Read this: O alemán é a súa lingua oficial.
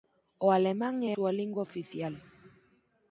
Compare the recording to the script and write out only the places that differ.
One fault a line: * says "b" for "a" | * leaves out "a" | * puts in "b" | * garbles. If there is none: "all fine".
* leaves out "a"